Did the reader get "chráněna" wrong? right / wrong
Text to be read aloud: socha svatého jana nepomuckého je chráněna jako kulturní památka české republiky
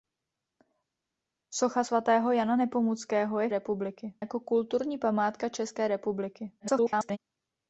wrong